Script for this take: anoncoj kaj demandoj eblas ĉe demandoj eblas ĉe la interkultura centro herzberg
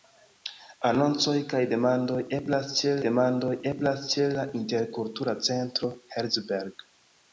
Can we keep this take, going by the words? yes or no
yes